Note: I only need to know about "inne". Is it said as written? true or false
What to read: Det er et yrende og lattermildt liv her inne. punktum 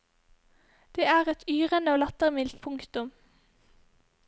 false